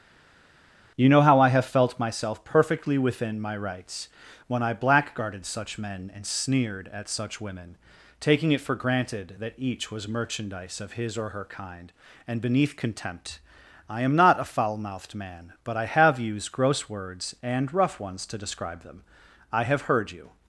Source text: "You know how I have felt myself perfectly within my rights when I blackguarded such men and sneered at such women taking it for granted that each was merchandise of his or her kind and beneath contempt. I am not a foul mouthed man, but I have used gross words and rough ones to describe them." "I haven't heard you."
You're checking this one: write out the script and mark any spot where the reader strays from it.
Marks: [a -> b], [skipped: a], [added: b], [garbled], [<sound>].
"You know how I have felt myself perfectly within my rights when I blackguarded such men and sneered at such women taking it for granted that each was merchandise of his or her kind and beneath contempt. I am not a foul mouthed man, but I have used gross words and rough ones to describe them." "I [haven't -> have] heard you."